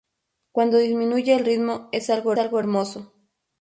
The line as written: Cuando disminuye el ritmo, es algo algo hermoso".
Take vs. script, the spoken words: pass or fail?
pass